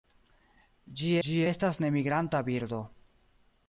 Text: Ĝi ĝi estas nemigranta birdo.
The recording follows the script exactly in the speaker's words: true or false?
true